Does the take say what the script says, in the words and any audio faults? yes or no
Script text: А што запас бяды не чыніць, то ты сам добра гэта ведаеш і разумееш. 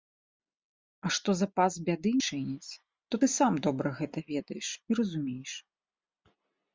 no